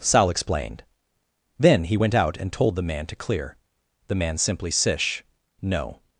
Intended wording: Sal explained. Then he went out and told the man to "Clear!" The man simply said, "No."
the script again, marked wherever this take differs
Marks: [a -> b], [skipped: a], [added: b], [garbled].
Sal explained. Then he went out and told the man to "Clear!" The man simply [said, -> sish] "No."